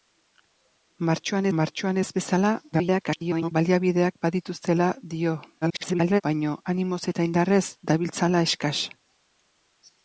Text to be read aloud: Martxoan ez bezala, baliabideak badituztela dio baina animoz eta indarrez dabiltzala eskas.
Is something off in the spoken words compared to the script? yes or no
yes